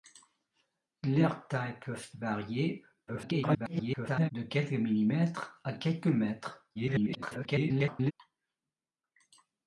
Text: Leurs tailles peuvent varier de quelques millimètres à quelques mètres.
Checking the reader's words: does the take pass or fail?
fail